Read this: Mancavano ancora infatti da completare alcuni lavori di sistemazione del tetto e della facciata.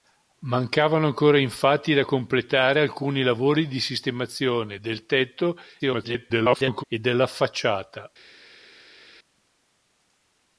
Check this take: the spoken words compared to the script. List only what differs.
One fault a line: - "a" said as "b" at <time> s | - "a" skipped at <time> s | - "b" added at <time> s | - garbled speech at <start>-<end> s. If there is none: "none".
- garbled speech at 5.8-6.8 s